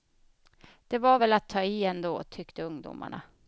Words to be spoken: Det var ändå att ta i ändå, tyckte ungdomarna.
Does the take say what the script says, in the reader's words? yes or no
no